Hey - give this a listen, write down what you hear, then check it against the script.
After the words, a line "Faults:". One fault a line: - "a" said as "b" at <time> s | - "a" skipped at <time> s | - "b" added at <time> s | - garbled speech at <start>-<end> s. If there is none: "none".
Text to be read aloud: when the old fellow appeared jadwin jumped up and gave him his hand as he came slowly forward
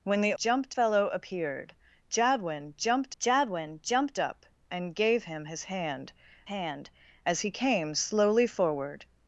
when the jumped fellow appeared jadwin jumped jadwin jumped up and gave him his hand hand as he came slowly forward
Faults:
- "old" said as "jumped" at 0.4 s
- "jadwin jumped" added at 3.2 s
- "hand" added at 6.4 s